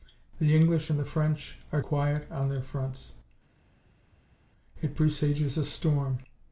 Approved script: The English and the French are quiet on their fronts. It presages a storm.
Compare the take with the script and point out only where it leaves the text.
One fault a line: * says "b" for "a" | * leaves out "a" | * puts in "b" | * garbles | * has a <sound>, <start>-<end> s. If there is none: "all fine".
all fine